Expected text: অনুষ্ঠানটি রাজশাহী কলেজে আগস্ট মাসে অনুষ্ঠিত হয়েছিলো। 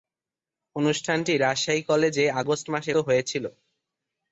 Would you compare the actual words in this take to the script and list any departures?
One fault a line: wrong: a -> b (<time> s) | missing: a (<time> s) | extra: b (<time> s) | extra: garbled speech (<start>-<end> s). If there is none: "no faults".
missing: অনুষ্ঠিত (2.9 s)